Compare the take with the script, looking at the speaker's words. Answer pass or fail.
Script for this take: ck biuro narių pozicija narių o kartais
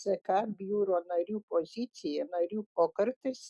pass